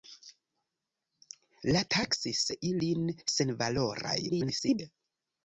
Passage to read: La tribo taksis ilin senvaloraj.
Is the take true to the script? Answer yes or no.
no